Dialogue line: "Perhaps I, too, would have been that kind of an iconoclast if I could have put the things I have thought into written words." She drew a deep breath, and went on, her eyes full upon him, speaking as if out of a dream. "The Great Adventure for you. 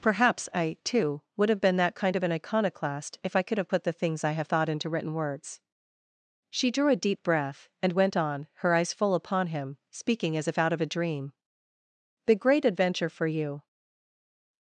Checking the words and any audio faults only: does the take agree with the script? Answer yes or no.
yes